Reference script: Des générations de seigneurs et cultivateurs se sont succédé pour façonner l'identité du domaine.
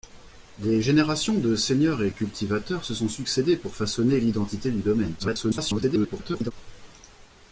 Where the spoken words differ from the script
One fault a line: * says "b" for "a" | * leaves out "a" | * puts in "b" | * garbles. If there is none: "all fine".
* garbles